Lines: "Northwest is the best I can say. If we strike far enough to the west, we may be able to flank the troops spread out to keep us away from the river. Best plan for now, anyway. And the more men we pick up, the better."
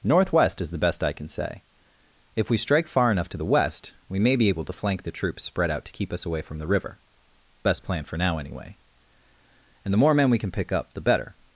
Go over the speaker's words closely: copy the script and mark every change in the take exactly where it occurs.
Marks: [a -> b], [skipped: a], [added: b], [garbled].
"Northwest is the best I can say. If we strike far enough to the west, we may be able to flank the troops spread out to keep us away from the river. Best plan for now, anyway. And the more men we [added: can] pick up, the better."